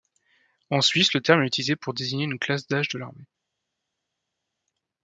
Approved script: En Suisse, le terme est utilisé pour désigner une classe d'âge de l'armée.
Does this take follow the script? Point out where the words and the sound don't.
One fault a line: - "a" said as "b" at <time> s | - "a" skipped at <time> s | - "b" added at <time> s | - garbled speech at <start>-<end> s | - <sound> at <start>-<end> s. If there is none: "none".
none